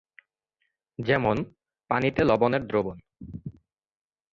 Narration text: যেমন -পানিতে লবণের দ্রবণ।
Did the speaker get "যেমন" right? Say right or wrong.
right